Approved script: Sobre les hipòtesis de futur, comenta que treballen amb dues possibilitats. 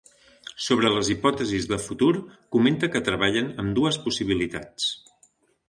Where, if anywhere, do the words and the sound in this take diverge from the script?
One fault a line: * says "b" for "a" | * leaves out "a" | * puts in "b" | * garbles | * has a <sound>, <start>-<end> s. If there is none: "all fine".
all fine